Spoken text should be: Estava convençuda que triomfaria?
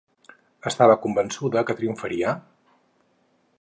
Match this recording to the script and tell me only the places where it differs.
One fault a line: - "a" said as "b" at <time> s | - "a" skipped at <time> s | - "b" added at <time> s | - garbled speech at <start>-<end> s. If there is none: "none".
none